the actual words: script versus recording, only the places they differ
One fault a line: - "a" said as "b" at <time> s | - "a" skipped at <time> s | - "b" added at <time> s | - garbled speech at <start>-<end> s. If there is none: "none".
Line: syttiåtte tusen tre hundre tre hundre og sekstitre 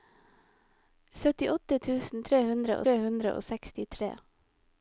none